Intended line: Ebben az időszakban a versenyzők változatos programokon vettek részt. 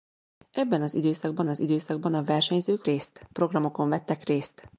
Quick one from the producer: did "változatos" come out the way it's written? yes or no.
no